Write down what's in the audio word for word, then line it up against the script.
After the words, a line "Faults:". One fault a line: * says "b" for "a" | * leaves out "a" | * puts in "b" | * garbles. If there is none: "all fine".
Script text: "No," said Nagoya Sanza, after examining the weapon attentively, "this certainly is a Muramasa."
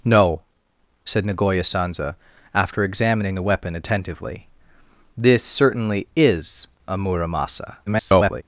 "No," said Nagoya Sanza, after examining the weapon attentively, "this certainly is a Muramasa." [garbled]
Faults:
* garbles